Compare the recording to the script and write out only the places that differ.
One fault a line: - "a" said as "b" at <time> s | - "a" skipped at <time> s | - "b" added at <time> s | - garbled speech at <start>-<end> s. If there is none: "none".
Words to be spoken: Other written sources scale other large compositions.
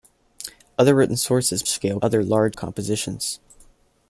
none